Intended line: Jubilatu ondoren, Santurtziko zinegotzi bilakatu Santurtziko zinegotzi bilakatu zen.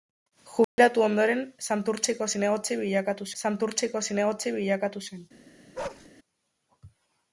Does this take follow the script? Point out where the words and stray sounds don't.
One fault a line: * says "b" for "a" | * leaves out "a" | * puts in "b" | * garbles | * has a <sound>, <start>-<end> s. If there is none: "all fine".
* has a dropout, 0.6-0.8 s
* has a bark, 5.7-6.1 s